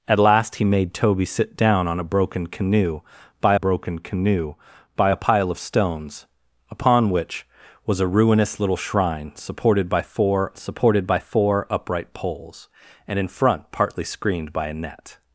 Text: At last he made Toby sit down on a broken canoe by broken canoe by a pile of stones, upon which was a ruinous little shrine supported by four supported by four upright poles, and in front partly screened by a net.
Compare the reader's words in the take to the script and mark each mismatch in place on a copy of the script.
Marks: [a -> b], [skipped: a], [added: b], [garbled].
At last he made Toby sit down on a broken canoe by broken canoe by a pile of stones, upon which was a ruinous little shrine supported by four supported by four upright poles, and in front partly screened by a net.